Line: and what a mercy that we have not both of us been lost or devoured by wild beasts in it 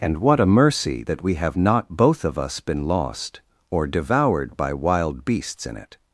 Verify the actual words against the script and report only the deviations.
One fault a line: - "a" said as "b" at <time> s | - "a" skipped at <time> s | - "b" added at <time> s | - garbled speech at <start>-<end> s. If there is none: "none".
none